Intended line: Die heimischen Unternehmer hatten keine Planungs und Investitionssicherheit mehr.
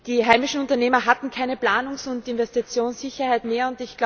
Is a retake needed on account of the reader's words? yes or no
no